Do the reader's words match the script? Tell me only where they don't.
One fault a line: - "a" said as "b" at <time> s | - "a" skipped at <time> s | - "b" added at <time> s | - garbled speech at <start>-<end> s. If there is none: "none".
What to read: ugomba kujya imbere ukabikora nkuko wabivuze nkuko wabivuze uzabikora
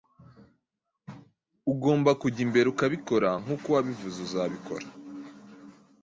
- "nkuko wabivuze" skipped at 4.2 s